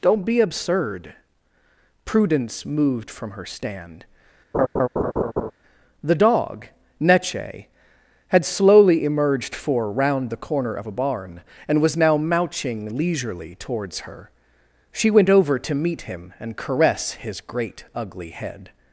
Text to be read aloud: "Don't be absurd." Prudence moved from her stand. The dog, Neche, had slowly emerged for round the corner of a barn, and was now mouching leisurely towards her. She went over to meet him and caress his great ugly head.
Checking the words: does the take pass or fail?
pass